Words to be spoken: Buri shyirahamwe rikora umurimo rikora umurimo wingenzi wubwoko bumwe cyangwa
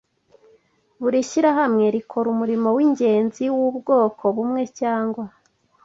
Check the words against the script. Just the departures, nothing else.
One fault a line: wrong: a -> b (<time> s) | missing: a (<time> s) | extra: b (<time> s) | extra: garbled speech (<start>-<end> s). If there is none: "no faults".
missing: rikora umurimo (2.7 s)